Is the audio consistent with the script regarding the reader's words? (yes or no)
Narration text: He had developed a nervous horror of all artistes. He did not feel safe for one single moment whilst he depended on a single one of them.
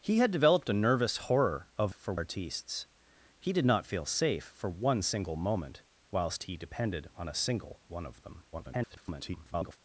no